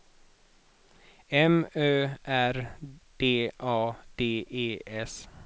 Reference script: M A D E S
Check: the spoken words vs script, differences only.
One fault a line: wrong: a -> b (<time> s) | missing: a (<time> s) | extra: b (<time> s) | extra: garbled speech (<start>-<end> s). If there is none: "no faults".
extra: Ö R D (1.8 s)